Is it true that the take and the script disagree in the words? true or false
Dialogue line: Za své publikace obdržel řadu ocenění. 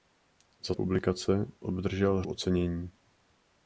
true